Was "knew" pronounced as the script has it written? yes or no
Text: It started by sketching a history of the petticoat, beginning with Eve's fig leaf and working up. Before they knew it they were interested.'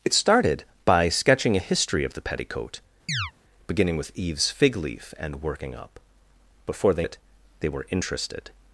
no